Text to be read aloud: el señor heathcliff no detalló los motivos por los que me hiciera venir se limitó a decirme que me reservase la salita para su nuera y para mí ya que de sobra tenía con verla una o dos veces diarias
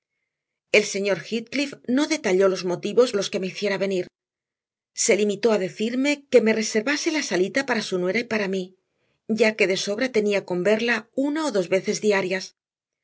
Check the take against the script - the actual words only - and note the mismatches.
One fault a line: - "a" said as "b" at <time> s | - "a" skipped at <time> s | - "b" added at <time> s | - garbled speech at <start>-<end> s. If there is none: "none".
- "por" skipped at 3.1 s